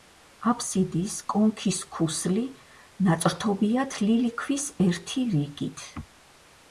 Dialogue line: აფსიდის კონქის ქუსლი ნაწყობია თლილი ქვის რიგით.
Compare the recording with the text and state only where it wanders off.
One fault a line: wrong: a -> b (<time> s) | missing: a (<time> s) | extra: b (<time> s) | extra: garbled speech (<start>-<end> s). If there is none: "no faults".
extra: ერთი (4.9 s)